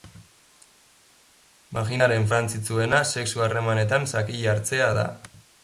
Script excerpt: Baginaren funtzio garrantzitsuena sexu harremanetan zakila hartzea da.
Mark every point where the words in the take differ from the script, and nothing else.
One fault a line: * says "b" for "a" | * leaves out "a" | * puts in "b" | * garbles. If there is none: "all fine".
* leaves out "funtzio"